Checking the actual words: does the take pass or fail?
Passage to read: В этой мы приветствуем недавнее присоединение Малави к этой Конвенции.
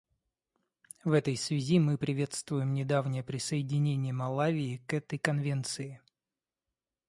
fail